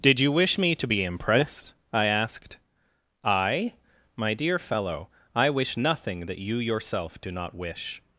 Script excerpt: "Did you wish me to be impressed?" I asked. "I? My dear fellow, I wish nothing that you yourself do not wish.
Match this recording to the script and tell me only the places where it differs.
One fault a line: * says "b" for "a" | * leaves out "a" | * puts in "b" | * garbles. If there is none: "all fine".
all fine